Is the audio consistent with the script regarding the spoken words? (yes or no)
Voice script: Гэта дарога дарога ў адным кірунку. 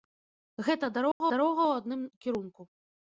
yes